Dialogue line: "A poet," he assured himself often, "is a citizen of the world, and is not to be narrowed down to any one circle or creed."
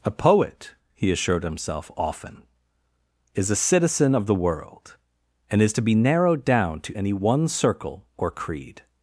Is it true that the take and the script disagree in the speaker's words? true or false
true